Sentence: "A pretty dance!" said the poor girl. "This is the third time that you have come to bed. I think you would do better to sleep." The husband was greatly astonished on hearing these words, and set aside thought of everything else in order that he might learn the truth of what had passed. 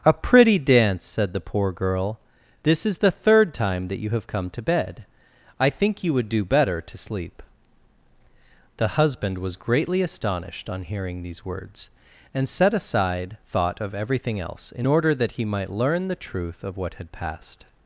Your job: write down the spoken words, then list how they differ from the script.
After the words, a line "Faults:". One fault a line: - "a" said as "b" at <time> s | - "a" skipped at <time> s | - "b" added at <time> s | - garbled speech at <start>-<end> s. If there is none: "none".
"A pretty dance!" said the poor girl. "This is the third time that you have come to bed. I think you would do better to sleep." The husband was greatly astonished on hearing these words, and set aside thought of everything else in order that he might learn the truth of what had passed.
Faults:
none